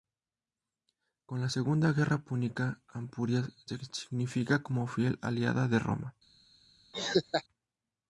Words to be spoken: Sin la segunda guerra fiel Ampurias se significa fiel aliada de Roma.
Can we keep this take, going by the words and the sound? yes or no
no